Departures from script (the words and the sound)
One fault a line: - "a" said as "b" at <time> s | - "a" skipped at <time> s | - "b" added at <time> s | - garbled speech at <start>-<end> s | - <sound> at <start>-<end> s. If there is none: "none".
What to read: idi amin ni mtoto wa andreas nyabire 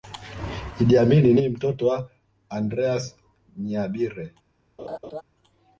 - laugh at 4.8-5.2 s